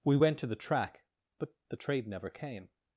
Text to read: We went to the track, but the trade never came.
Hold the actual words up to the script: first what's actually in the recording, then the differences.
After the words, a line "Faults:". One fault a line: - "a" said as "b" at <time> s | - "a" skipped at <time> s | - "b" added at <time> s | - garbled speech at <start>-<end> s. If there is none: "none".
We went to the track, but the trade never came.
Faults:
none